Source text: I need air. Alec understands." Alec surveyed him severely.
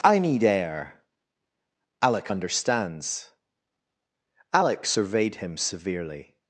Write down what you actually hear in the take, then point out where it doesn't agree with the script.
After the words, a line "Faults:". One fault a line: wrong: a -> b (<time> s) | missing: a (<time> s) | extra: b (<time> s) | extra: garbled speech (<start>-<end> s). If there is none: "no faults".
I need air. Alec understands." Alec surveyed him severely.
Faults:
no faults